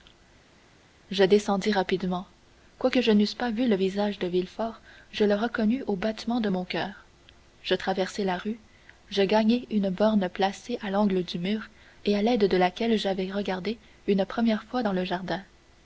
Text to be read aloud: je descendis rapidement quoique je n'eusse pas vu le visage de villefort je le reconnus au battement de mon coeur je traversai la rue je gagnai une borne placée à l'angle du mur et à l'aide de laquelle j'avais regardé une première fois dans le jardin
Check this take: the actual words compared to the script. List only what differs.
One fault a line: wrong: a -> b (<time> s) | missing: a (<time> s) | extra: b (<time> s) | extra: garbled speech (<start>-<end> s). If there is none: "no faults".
no faults